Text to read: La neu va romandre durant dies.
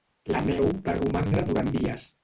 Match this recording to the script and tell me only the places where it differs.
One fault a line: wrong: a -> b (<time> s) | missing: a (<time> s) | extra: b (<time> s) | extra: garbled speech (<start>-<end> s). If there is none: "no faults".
no faults